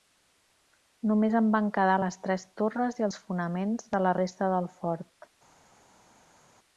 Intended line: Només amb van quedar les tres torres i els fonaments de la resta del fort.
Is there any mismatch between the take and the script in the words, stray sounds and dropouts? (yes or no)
yes